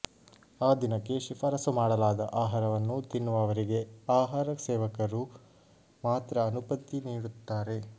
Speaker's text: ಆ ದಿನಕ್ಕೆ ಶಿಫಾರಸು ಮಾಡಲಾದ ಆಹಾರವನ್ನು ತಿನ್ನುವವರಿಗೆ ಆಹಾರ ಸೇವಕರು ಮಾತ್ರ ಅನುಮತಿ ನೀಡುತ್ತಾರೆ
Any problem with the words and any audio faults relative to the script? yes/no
no